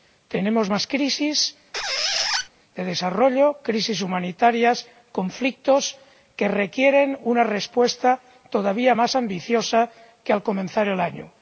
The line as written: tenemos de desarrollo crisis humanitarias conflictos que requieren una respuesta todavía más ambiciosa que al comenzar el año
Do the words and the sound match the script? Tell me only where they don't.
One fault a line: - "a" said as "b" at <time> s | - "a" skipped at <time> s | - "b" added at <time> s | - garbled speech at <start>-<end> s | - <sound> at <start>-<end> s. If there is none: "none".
- "más crisis" added at 0.7 s
- squeak at 1.7-2.5 s